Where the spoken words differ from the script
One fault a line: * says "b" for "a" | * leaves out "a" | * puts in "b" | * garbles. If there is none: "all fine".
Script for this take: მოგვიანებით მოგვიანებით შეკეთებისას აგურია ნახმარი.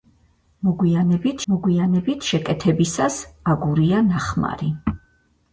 all fine